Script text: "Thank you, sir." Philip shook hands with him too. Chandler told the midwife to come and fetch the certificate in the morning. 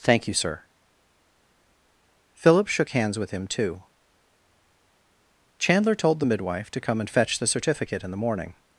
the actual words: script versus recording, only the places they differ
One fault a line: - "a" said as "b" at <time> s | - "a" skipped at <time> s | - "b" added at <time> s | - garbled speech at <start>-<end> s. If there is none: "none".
none